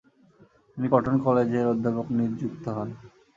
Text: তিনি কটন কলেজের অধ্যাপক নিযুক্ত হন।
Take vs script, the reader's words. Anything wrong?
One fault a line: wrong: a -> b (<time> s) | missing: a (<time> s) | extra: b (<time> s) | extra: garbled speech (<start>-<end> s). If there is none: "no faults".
no faults